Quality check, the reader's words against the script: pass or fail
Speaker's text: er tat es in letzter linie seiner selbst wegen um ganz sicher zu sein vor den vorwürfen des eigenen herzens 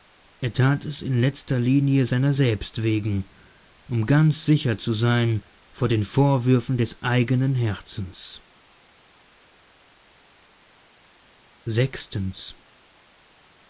pass